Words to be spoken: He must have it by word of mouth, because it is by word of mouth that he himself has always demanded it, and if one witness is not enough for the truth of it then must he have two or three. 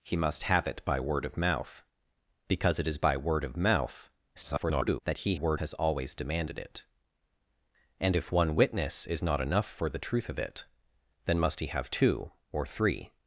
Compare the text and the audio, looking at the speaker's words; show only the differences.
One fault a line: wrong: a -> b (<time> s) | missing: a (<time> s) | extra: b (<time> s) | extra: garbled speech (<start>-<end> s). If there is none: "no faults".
extra: garbled speech (4.4-5.0 s)
wrong: himself -> word (5.3 s)